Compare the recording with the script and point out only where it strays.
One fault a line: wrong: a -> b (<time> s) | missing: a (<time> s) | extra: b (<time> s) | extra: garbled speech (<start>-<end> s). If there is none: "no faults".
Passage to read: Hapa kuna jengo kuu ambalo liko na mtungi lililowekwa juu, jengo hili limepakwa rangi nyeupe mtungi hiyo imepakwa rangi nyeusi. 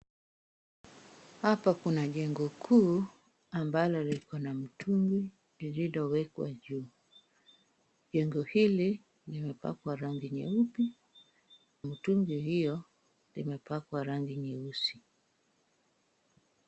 no faults